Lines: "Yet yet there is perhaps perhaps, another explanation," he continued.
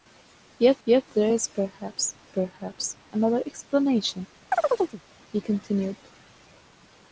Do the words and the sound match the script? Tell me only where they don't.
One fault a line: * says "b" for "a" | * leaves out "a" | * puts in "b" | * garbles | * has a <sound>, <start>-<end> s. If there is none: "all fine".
* has a chirp, 4.5-5.0 s